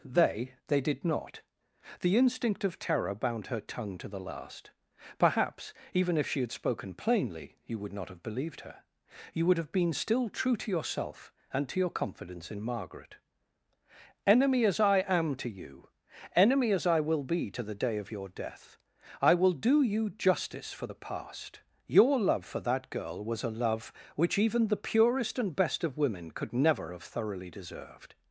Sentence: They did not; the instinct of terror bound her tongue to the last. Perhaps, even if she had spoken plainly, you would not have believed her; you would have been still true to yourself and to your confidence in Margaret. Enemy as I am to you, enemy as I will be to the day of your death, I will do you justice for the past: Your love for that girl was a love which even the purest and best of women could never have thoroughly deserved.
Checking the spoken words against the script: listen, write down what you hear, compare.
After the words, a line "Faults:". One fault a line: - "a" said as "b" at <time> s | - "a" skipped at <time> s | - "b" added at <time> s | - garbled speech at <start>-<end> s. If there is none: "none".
They they did not; the instinct of terror bound her tongue to the last. Perhaps, even if she had spoken plainly, you would not have believed her; you would have been still true to yourself and to your confidence in Margaret. Enemy as I am to you, enemy as I will be to the day of your death, I will do you justice for the past: Your love for that girl was a love which even the purest and best of women could never have thoroughly deserved.
Faults:
- "they" added at 0.7 s